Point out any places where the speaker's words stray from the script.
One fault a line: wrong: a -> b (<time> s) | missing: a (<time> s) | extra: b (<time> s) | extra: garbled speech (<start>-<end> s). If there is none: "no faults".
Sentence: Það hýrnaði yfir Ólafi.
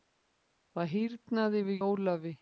no faults